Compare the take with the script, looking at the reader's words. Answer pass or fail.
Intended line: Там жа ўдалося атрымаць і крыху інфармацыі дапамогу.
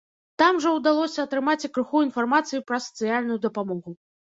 fail